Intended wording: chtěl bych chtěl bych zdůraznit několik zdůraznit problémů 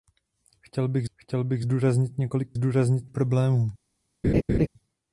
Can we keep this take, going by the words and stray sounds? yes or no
no